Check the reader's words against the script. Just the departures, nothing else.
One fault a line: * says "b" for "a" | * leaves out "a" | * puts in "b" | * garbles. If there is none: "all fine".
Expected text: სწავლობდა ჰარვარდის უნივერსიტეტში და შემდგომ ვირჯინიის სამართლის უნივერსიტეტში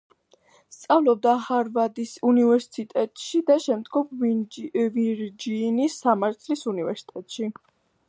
all fine